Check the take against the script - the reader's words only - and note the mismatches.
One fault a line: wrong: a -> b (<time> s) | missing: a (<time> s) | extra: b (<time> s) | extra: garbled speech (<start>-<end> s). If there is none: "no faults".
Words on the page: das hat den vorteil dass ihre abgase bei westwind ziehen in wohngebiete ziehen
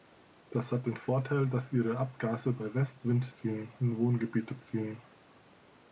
no faults